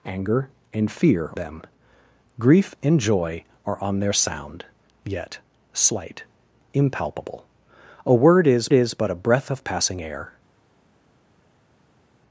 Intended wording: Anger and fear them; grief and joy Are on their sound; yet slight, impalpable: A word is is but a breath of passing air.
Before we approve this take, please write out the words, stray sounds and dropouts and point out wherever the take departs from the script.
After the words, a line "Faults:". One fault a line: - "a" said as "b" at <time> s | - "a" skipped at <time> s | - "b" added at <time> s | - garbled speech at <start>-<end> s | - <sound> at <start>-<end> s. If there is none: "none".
Anger and fear them; grief and joy Are on their sound; yet slight, impalpable: A word is is but a breath of passing air.
Faults:
none